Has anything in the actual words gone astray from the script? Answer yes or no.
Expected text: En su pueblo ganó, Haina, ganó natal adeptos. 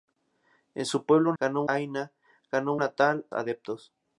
no